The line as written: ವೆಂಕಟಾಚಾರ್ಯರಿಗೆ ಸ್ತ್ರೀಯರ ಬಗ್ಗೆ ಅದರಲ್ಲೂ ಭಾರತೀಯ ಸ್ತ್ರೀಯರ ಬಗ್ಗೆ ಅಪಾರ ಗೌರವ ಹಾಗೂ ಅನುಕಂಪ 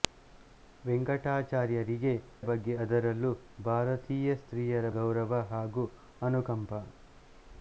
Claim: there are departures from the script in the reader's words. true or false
true